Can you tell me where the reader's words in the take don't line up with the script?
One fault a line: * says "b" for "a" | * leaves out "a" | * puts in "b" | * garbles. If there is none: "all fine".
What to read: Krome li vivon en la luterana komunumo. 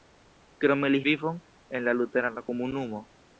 all fine